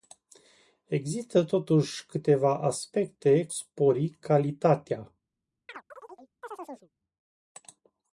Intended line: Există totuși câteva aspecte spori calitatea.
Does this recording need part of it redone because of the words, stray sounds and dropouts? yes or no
yes